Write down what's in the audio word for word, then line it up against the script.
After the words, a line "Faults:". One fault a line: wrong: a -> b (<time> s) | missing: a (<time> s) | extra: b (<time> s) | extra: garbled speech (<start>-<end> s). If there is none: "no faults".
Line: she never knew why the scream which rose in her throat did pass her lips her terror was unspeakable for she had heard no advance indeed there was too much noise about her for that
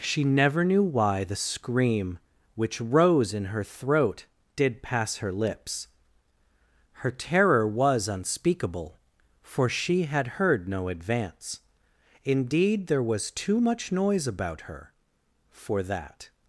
she never knew why the scream which rose in her throat did pass her lips her terror was unspeakable for she had heard no advance indeed there was too much noise about her for that
Faults:
no faults